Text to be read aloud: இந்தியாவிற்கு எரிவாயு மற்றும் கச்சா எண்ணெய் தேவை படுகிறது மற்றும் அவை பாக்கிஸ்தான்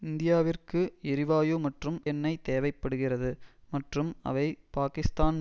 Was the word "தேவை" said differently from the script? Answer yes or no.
no